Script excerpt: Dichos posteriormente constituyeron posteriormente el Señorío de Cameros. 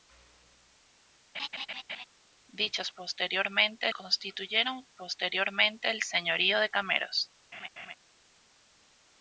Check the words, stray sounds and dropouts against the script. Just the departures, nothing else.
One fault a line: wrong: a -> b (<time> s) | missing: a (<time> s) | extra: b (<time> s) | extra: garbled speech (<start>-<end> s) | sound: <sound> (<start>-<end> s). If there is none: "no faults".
sound: laugh (1.3-2.1 s)
sound: laugh (7.5-7.9 s)